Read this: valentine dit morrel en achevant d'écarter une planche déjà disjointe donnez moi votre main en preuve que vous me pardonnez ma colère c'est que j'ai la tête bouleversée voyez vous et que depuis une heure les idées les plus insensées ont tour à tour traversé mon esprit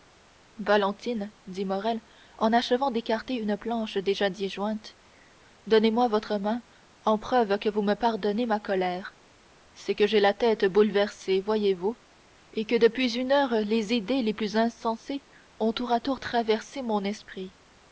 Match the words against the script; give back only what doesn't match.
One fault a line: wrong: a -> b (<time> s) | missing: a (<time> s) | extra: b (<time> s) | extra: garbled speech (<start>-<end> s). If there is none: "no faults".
no faults